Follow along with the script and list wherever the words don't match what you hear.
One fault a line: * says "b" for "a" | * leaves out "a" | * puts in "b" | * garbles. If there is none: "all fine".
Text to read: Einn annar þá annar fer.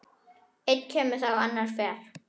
* says "kemur" for "annar"